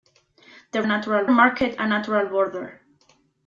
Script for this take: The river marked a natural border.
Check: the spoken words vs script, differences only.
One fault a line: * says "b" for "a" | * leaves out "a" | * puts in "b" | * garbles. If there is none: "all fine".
* says "natural" for "river"